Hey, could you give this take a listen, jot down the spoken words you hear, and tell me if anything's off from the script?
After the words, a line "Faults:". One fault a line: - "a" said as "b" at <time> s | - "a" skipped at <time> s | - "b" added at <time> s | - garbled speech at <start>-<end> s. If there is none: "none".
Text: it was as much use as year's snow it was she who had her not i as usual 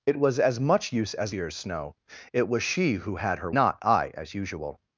it was as much use as year's snow it was she who had her not i as usual
Faults:
none